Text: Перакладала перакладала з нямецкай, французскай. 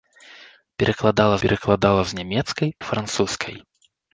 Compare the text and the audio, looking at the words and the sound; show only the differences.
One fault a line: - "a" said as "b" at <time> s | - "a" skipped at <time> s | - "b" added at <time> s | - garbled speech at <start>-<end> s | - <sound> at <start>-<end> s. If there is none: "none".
none